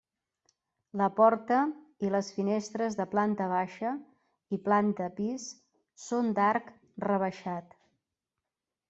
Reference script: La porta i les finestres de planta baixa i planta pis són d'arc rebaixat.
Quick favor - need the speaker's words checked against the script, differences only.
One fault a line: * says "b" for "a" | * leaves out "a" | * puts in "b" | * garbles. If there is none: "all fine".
all fine